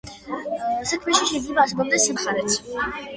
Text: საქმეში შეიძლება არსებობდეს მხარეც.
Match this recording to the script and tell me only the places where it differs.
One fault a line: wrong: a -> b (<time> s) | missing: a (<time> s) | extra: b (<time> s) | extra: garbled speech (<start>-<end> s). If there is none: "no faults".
no faults